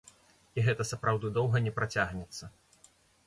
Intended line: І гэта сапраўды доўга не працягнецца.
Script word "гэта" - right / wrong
right